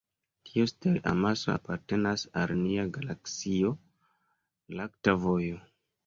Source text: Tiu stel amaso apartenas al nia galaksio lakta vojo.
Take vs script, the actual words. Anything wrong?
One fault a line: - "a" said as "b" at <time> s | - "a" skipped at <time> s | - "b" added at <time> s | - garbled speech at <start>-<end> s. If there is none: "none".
none